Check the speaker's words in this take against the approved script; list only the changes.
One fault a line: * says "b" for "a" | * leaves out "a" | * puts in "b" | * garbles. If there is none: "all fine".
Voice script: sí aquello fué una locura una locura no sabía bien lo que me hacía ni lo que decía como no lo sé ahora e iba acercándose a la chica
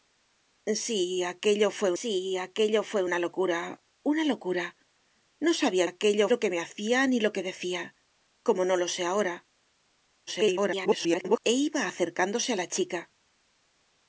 * puts in "sí aquello fué"
* says "aquello" for "bien"
* garbles